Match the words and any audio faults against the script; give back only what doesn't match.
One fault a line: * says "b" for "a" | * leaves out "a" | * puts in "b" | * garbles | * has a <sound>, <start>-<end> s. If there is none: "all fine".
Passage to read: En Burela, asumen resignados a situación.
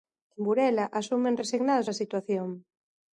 all fine